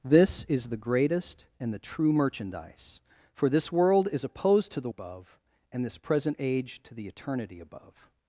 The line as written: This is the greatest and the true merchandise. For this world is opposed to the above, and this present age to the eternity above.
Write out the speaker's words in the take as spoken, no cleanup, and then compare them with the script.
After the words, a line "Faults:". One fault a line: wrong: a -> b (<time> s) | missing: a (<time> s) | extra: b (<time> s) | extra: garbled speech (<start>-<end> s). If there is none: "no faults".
This is the greatest and the true merchandise. For this world is opposed to the above, and this present age to the eternity above.
Faults:
no faults